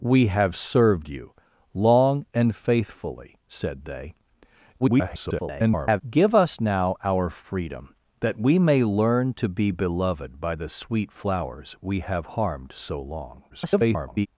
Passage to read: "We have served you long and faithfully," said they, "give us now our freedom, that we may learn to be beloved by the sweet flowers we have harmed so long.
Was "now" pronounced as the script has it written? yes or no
yes